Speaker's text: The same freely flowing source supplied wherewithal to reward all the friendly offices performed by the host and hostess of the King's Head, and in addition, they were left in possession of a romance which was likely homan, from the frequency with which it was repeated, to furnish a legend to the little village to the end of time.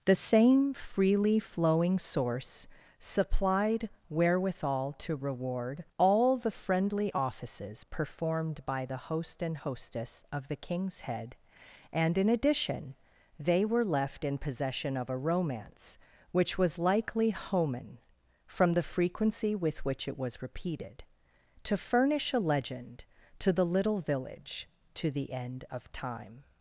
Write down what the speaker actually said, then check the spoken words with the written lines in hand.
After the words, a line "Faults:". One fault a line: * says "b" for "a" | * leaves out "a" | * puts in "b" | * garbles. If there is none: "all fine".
The same freely flowing source supplied wherewithal to reward all the friendly offices performed by the host and hostess of the King's Head, and in addition, they were left in possession of a romance which was likely homan, from the frequency with which it was repeated, to furnish a legend to the little village to the end of time.
Faults:
all fine